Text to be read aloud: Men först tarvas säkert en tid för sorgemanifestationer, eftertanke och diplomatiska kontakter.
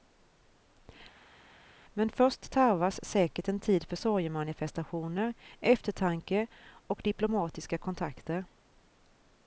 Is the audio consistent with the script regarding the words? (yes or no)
yes